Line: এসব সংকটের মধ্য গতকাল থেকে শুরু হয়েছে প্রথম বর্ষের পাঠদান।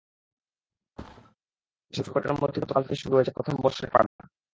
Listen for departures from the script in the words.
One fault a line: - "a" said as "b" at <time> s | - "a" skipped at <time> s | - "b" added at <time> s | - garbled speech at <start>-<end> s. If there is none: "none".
none